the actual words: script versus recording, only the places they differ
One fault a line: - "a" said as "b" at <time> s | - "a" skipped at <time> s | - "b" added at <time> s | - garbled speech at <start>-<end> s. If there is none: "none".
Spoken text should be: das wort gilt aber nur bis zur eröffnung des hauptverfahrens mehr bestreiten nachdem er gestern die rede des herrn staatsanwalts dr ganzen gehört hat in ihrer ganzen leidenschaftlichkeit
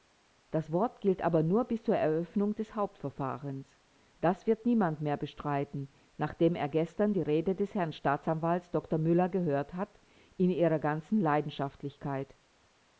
- "das wird niemand" added at 4.2 s
- "ganzen" said as "müller" at 9.0 s